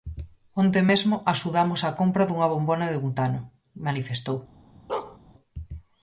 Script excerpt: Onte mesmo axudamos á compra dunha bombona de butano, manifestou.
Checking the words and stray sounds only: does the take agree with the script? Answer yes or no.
no